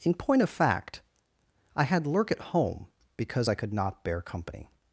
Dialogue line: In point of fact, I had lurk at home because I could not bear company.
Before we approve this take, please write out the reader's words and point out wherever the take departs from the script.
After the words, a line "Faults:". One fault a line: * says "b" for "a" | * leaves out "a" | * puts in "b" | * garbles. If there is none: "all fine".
In point of fact, I had lurk at home because I could not bear company.
Faults:
all fine